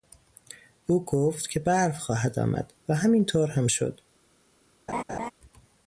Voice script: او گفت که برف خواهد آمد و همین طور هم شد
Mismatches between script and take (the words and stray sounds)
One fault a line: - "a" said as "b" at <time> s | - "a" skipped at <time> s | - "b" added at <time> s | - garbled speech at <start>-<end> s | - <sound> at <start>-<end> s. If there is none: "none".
- laugh at 4.9-5.3 s